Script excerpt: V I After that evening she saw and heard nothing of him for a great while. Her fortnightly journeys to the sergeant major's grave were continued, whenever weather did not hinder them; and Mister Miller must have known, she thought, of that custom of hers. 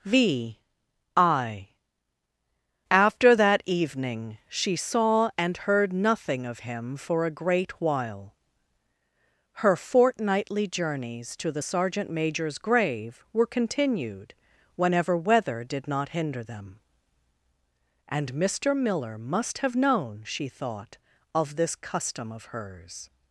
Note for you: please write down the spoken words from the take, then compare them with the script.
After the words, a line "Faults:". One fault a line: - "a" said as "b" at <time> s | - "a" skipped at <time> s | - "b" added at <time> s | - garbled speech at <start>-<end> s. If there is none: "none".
V I After that evening she saw and heard nothing of him for a great while. Her fortnightly journeys to the sergeant major's grave were continued, whenever weather did not hinder them; and Mister Miller must have known, she thought, of this custom of hers.
Faults:
- "that" said as "this" at 21.6 s